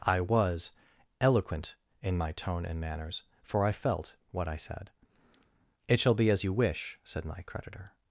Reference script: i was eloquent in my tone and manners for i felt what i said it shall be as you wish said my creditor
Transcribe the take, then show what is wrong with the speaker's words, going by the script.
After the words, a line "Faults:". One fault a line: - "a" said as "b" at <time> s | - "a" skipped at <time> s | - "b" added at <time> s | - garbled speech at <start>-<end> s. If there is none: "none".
i was eloquent in my tone and manners for i felt what i said it shall be as you wish said my creditor
Faults:
none